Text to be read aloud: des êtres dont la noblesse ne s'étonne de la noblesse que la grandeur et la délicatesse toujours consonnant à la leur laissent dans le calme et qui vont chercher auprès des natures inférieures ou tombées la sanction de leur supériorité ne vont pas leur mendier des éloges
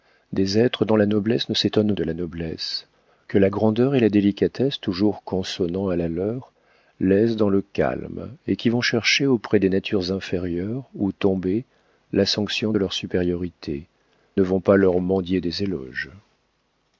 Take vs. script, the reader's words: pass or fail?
pass